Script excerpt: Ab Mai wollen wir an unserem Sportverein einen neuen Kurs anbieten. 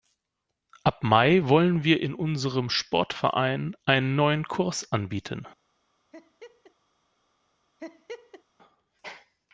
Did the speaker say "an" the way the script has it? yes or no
no